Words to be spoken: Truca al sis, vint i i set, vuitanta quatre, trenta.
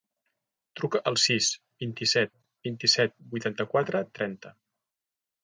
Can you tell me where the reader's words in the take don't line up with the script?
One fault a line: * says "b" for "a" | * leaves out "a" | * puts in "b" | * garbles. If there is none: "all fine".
* puts in "set vint"